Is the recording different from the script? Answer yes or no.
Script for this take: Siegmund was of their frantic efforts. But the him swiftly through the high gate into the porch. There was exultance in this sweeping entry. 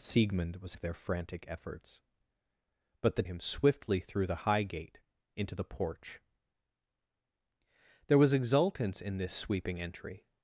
no